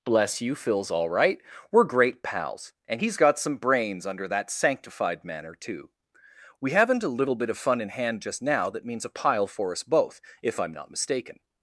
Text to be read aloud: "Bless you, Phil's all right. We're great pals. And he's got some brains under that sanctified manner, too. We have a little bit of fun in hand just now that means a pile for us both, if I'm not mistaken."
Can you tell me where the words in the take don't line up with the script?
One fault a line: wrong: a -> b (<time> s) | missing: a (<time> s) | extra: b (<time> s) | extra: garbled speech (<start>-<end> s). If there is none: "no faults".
wrong: have -> haven't (6.7 s)